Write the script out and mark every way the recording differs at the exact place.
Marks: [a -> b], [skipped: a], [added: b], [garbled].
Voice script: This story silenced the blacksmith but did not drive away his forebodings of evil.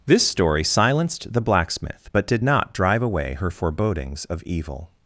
This story silenced the blacksmith but did not drive away [his -> her] forebodings of evil.